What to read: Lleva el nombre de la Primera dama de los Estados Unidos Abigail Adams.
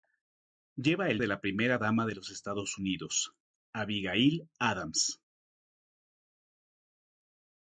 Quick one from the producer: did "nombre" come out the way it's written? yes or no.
no